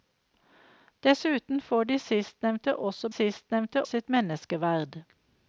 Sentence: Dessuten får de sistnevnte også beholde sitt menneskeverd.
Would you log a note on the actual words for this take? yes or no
yes